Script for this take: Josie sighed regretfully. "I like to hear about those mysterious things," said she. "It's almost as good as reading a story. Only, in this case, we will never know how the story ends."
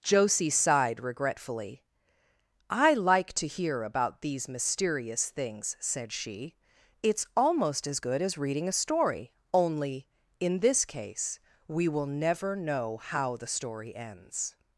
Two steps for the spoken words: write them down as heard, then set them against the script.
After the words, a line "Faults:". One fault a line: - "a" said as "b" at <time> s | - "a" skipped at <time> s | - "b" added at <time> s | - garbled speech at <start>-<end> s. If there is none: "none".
Josie sighed regretfully. "I like to hear about these mysterious things," said she. "It's almost as good as reading a story. Only, in this case, we will never know how the story ends."
Faults:
- "those" said as "these" at 4.2 s